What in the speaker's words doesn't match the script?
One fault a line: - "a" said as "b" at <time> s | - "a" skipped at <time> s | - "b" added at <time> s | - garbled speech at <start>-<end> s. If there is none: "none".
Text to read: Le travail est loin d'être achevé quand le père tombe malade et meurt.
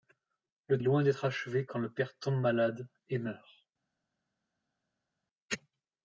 - "travail" skipped at 0.8 s